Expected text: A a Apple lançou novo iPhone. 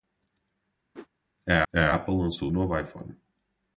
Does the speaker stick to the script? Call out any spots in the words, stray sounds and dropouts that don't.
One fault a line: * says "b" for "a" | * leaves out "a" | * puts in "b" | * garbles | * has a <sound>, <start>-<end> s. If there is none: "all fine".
* has a whoosh, 0.9-1.1 s